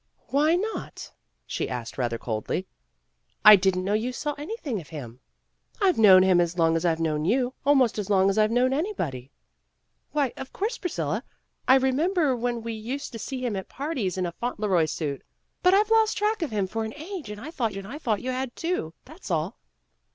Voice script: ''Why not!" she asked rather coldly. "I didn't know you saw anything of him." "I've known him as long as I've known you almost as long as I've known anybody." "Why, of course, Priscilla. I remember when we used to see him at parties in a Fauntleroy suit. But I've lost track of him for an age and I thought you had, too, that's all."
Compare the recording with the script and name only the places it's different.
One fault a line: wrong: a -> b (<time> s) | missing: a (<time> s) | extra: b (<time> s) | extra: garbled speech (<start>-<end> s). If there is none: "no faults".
extra: and I thought (17.8 s)